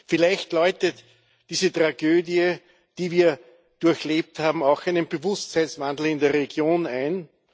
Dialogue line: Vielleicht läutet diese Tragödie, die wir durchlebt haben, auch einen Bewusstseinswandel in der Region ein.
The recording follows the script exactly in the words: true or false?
true